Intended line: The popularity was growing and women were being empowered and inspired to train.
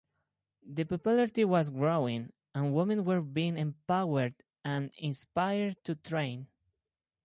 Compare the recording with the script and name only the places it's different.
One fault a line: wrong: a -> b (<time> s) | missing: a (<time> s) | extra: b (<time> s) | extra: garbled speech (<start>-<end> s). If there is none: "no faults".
no faults